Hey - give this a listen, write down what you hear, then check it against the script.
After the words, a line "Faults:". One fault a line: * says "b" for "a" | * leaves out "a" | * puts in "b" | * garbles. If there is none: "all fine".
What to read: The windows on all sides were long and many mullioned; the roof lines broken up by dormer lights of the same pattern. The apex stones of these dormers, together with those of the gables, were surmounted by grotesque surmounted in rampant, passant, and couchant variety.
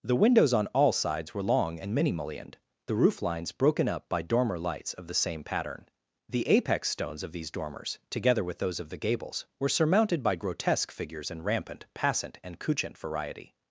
The windows on all sides were long and many mullioned; the roof lines broken up by dormer lights of the same pattern. The apex stones of these dormers, together with those of the gables, were surmounted by grotesque figures in rampant, passant, and couchant variety.
Faults:
* says "figures" for "surmounted"